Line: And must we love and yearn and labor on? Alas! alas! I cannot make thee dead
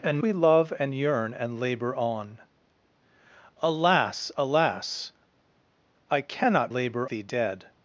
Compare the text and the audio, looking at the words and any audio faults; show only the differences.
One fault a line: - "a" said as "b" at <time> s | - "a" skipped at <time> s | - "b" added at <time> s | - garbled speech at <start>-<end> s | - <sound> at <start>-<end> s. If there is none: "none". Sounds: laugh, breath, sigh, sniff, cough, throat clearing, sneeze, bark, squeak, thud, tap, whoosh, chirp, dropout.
- "must" skipped at 0.2 s
- "make" said as "labor" at 6.7 s